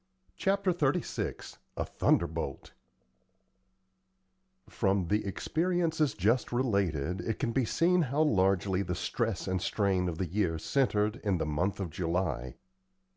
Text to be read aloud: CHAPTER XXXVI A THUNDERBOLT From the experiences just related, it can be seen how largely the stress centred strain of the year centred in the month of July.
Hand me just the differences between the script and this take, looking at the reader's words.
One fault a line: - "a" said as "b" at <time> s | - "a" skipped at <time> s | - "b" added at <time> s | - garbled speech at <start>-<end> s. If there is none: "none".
- "centred" said as "and" at 9.5 s